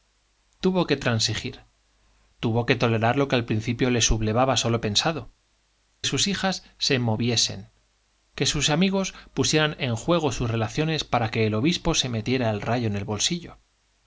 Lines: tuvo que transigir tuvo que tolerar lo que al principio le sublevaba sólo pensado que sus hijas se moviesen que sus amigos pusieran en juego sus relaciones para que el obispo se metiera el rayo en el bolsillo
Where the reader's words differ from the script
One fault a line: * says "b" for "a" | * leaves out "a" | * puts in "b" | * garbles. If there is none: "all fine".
* leaves out "que"